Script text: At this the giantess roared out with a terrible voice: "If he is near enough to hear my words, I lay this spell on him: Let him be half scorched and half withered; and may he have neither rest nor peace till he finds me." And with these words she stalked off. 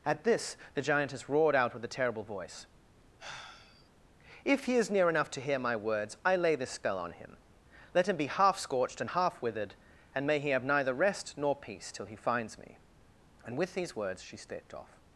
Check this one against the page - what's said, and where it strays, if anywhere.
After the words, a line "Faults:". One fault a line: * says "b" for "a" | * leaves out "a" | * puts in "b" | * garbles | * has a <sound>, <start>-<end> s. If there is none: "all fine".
At this the giantess roared out with a terrible voice: "If he is near enough to hear my words, I lay this spell on him: Let him be half scorched and half withered; and may he have neither rest nor peace till he finds me." And with these words she stepped off.
Faults:
* has a sigh, 3.2-3.9 s
* says "stepped" for "stalked"